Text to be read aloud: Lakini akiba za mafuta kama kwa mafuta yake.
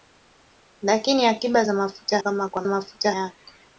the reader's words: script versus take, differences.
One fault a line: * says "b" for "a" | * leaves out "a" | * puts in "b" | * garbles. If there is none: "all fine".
all fine